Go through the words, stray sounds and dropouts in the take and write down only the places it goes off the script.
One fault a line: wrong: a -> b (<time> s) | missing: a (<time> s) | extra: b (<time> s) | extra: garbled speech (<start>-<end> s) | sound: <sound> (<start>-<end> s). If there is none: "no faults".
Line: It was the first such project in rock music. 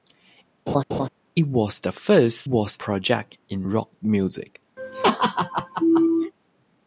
sound: laugh (0.7-1.1 s)
wrong: such -> was (2.4 s)
sound: laugh (4.8-6.3 s)